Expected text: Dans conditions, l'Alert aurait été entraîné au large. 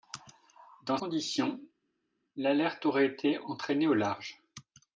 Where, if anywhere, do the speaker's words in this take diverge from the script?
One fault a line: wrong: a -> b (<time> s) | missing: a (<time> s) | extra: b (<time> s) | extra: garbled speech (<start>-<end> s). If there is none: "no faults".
no faults